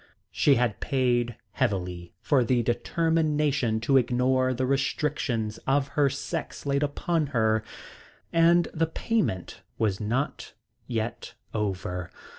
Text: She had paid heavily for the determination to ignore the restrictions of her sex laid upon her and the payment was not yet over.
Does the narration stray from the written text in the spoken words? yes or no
no